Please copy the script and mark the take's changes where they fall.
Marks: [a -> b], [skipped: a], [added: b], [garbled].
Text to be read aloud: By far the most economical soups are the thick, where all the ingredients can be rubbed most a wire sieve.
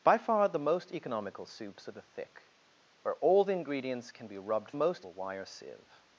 By far the most economical soups are the thick, where all the ingredients can be rubbed most a wire sieve.